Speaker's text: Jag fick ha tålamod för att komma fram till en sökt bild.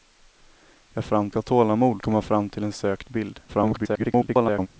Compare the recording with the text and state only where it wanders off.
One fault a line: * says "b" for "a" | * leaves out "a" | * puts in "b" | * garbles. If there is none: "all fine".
* says "fram" for "fick"
* leaves out "för att"
* garbles